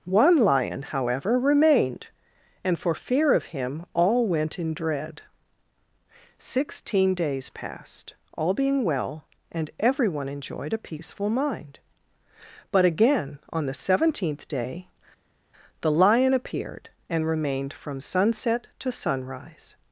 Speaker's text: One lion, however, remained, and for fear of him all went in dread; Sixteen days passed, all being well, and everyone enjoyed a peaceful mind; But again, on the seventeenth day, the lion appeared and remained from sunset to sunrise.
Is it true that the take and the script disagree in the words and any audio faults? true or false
false